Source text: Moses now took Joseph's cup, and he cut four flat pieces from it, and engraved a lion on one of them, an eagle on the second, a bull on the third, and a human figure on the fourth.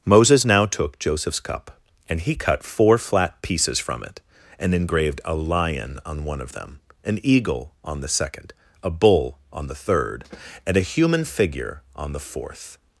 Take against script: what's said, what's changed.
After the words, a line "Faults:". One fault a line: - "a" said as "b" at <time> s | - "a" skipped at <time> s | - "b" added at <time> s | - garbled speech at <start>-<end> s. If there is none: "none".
Moses now took Joseph's cup, and he cut four flat pieces from it, and engraved a lion on one of them, an eagle on the second, a bull on the third, and a human figure on the fourth.
Faults:
none